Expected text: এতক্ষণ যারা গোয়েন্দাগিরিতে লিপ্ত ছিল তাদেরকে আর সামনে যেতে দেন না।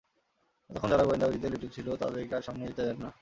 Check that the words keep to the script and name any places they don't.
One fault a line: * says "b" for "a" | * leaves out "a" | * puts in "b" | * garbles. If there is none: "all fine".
all fine